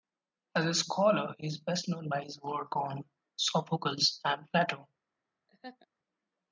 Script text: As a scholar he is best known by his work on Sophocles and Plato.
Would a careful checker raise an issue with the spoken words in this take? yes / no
no